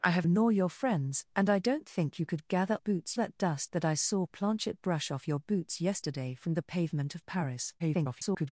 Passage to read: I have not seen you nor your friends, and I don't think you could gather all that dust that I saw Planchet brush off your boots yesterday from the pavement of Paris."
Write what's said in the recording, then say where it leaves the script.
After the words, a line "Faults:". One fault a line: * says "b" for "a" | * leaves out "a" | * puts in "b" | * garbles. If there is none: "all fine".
I have nor your friends, and I don't think you could gather boots that dust that I saw Planchet brush off your boots yesterday from the pavement of Paris." [garbled]
Faults:
* leaves out "not seen you"
* says "boots" for "all"
* garbles